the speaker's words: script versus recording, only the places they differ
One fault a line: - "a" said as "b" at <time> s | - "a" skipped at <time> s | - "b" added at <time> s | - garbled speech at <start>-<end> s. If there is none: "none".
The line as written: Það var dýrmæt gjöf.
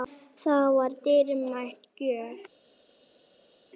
none